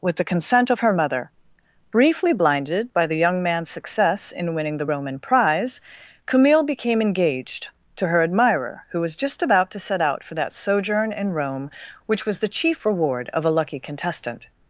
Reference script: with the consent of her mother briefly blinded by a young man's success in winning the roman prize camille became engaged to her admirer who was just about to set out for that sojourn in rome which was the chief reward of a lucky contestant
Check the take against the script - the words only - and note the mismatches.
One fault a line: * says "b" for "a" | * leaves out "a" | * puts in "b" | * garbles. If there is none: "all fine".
* says "the" for "a"